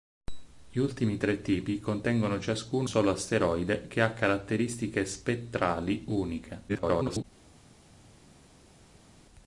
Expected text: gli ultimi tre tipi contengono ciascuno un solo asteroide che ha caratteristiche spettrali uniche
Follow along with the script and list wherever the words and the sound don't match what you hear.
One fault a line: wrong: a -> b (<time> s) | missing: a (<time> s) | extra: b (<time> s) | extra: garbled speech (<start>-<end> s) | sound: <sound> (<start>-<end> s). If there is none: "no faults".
missing: un (2.9 s)
extra: garbled speech (6.7-7.2 s)